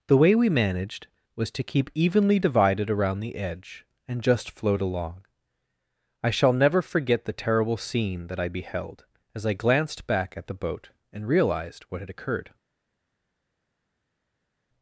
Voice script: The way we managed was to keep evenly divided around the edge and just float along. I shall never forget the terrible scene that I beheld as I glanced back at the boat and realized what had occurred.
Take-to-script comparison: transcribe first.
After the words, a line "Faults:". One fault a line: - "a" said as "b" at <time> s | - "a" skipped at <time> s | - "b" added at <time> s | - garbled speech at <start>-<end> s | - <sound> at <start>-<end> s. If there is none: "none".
The way we managed was to keep evenly divided around the edge and just float along. I shall never forget the terrible scene that I beheld as I glanced back at the boat and realized what had occurred.
Faults:
none